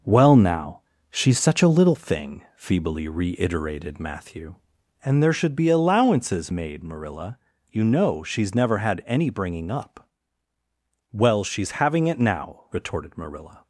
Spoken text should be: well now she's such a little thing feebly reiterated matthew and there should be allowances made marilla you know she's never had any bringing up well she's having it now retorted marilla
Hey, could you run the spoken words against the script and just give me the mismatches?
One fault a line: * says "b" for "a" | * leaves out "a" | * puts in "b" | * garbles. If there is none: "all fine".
all fine